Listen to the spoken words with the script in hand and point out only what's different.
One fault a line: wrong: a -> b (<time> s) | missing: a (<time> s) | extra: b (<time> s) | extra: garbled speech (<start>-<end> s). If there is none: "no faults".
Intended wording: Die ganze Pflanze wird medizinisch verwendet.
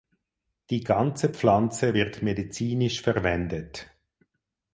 no faults